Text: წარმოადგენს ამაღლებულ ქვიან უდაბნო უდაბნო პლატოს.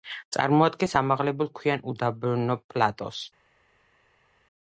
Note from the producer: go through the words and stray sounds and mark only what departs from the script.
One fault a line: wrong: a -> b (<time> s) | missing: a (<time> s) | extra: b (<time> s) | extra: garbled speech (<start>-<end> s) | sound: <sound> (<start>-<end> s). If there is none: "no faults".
missing: უდაბნო (2.6 s)